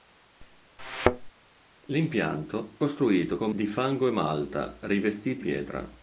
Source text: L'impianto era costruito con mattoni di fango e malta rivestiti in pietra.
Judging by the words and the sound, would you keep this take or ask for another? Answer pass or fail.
fail